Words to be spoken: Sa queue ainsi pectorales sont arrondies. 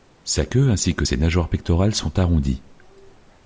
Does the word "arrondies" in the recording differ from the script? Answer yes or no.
no